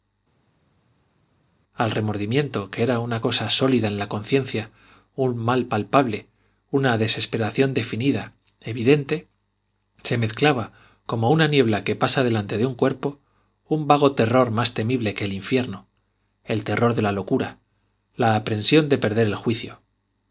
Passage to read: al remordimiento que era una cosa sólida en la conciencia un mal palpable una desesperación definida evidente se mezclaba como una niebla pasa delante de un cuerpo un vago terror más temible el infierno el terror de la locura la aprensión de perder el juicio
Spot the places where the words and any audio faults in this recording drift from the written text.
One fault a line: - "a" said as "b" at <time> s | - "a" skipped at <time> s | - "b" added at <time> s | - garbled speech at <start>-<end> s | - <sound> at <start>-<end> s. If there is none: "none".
- "que" added at 11.8 s
- "que" added at 15.1 s